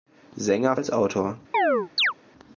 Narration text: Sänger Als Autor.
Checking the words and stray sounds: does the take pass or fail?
fail